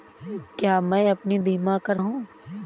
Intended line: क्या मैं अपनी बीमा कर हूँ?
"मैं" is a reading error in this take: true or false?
false